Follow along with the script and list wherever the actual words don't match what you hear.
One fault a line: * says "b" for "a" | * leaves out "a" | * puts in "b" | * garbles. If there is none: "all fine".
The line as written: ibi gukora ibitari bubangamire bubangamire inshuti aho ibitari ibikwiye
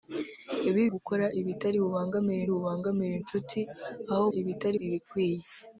all fine